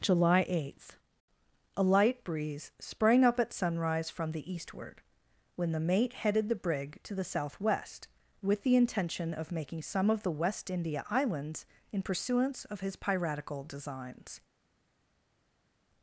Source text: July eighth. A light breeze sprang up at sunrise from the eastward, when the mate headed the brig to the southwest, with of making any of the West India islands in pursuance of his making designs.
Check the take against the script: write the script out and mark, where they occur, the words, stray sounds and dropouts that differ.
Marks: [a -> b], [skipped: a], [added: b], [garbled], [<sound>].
July eighth. A light breeze sprang up at sunrise from the eastward, when the mate headed the brig to the southwest, with [added: the intention] of making [any -> some] of the West India islands in pursuance of his [making -> piratical] designs.